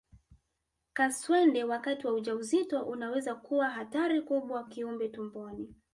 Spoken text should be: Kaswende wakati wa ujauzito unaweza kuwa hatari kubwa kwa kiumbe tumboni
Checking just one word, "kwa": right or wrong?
wrong